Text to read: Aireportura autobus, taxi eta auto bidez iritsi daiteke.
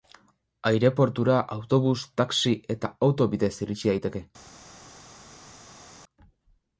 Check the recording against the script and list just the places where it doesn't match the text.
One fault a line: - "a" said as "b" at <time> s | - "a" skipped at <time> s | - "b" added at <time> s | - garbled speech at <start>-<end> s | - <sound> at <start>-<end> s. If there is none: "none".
none